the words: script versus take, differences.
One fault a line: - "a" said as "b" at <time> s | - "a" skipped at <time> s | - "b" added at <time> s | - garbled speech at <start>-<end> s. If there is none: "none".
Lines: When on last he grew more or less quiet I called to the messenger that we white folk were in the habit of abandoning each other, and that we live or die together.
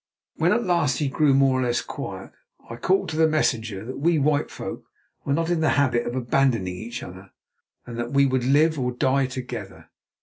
- "on" said as "at" at 0.5 s
- "not" added at 5.3 s
- "would" added at 8.2 s